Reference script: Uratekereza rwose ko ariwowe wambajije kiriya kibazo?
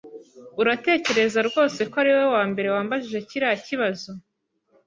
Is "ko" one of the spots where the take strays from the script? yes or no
no